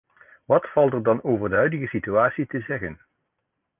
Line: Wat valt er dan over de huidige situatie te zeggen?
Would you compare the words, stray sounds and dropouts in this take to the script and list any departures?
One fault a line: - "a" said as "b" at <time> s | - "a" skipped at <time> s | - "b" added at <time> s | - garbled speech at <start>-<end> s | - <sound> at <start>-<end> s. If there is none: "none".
none